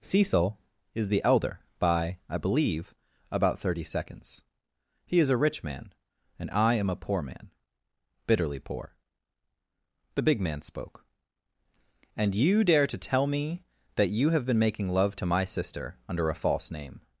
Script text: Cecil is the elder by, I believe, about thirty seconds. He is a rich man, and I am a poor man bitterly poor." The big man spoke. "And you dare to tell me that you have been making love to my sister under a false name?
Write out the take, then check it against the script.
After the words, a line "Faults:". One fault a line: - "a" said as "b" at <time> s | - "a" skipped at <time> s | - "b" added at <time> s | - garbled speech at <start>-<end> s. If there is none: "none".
Cecil is the elder by, I believe, about thirty seconds. He is a rich man, and I am a poor man bitterly poor." The big man spoke. "And you dare to tell me that you have been making love to my sister under a false name?
Faults:
none